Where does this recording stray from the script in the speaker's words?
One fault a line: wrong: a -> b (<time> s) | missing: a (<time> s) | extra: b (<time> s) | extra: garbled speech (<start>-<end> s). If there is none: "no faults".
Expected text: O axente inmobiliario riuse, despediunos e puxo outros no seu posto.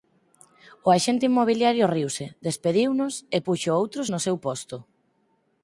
no faults